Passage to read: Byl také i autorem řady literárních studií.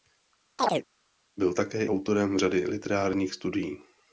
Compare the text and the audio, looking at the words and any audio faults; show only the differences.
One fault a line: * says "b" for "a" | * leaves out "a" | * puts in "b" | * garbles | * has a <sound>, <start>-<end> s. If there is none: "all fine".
* has a chirp, 0.6-0.8 s
* leaves out "i"